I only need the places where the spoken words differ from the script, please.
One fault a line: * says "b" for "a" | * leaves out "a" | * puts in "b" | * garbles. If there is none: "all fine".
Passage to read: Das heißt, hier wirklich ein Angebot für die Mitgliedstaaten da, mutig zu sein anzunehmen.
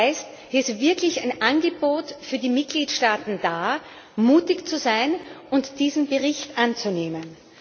* puts in "ist"
* puts in "und diesen Bericht"